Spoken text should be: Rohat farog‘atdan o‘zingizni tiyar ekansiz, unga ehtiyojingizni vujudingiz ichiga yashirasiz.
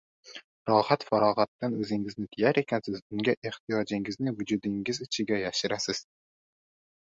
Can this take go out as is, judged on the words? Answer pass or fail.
pass